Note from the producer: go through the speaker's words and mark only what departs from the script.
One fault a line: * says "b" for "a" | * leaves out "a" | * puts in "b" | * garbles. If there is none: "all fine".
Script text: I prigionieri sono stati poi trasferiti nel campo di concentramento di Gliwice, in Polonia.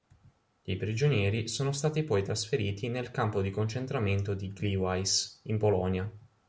all fine